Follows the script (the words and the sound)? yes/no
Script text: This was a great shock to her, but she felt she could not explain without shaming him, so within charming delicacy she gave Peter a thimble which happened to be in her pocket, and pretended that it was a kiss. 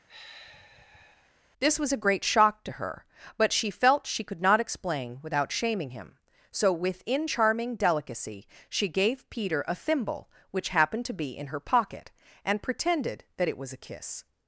no